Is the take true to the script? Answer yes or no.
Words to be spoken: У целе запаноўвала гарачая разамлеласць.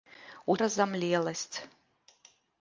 no